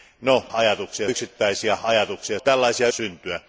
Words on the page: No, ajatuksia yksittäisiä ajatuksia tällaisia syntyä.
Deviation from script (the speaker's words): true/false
false